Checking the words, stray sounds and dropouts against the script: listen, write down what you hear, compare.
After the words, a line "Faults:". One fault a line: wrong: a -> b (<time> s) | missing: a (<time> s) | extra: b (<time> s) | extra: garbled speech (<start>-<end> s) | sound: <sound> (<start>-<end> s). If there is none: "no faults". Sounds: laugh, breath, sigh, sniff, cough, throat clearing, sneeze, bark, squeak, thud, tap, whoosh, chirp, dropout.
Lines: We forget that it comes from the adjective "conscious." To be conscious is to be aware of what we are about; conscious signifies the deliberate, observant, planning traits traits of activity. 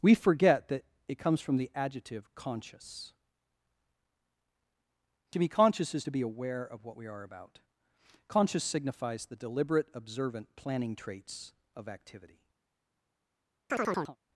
We forget that it comes from the adjective "conscious." To be conscious is to be aware of what we are about; conscious signifies the deliberate, observant, planning traits of activity.
Faults:
missing: traits (11.5 s)
sound: chirp (13.7-14.2 s)